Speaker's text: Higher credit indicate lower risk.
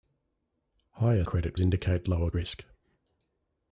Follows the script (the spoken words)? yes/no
yes